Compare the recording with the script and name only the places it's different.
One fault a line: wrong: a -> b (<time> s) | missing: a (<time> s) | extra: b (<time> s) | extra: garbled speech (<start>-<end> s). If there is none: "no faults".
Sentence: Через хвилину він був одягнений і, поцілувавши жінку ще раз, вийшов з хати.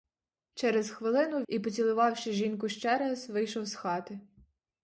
missing: він був одягнений (1.4 s)